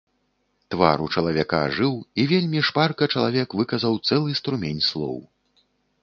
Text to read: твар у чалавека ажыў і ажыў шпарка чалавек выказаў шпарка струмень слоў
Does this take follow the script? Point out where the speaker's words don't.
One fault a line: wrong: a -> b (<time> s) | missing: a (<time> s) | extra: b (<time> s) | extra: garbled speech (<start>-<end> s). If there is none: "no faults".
wrong: ажыў -> вельмі (2.3 s)
wrong: шпарка -> цэлы (4.1 s)